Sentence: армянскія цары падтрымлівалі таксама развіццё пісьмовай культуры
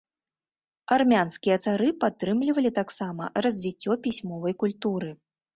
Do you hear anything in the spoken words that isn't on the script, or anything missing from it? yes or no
no